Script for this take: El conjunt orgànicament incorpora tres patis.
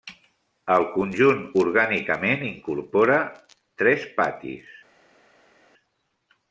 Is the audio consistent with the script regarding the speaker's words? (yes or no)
yes